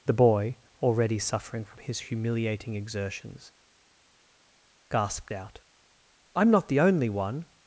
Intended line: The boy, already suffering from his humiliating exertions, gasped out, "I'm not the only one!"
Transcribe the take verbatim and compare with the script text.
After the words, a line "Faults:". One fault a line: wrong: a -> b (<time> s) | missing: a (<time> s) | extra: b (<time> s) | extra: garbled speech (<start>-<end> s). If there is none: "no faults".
The boy, already suffering from his humiliating exertions, gasped out, "I'm not the only one!"
Faults:
no faults